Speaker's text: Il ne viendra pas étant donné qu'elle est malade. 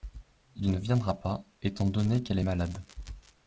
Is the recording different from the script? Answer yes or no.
no